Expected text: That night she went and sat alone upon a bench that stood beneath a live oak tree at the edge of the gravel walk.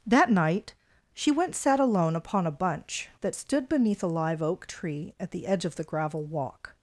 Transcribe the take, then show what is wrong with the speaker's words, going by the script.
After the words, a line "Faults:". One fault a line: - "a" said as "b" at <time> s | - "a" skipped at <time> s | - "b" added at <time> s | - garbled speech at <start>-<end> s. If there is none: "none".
That night she went sat alone upon a bunch that stood beneath a live oak tree at the edge of the gravel walk.
Faults:
- "and" skipped at 1.6 s
- "bench" said as "bunch" at 2.5 s